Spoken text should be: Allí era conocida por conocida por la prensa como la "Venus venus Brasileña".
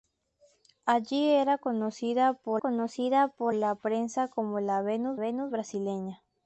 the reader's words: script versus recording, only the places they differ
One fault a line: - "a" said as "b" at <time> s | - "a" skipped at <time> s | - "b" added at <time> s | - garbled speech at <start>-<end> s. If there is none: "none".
none